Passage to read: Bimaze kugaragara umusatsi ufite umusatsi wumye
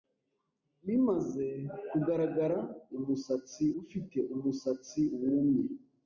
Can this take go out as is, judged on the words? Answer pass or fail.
pass